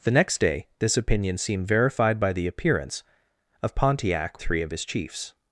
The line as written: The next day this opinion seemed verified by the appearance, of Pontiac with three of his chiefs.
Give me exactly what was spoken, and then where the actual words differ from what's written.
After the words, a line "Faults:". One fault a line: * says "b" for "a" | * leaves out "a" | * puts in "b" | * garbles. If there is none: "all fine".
The next day this opinion seemed verified by the appearance, of Pontiac three of his chiefs.
Faults:
* leaves out "with"